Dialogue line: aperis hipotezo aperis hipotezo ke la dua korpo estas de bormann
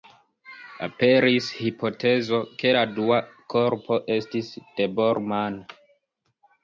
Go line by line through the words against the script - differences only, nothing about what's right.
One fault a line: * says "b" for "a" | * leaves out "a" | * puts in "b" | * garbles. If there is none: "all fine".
* leaves out "aperis hipotezo"
* says "estis" for "estas"